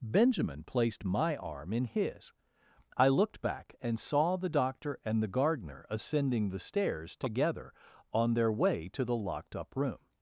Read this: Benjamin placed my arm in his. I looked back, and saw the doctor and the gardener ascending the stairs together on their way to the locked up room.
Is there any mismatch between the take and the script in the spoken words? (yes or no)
no